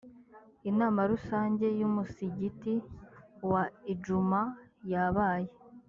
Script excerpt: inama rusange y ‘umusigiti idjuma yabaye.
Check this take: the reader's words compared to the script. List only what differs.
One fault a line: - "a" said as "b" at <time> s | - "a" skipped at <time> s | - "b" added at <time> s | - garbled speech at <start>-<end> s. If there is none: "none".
- "wa" added at 3.5 s